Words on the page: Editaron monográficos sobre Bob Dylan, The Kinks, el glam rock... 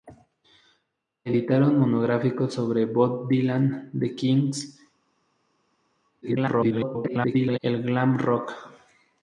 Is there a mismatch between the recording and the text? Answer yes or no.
yes